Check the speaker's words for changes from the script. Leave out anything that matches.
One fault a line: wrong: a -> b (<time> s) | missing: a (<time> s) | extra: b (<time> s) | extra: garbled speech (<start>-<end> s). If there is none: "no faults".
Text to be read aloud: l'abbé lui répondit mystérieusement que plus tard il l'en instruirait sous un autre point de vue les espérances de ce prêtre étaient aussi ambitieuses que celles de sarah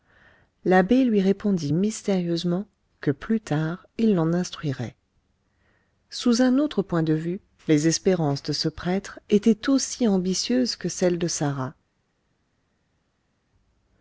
no faults